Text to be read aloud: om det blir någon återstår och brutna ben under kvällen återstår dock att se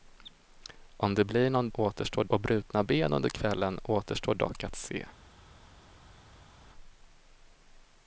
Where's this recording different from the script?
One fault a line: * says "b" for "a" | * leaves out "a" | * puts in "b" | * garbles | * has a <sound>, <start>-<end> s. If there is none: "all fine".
all fine